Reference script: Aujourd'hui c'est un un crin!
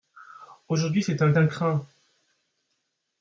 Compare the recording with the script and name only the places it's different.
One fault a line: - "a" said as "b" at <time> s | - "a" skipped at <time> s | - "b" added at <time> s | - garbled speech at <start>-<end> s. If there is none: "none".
none